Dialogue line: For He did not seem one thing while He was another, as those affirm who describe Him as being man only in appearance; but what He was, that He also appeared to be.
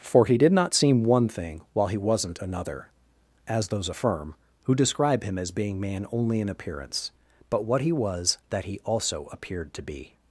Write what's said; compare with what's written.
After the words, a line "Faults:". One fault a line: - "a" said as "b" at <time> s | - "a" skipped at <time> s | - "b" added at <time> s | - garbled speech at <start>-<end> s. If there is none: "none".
For He did not seem one thing while He wasn't another, as those affirm who describe Him as being man only in appearance; but what He was, that He also appeared to be.
Faults:
- "was" said as "wasn't" at 2.0 s